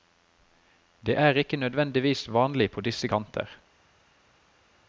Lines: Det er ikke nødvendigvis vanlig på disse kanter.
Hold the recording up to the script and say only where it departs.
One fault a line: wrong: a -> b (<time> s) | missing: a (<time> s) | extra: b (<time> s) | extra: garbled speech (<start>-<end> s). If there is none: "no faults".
no faults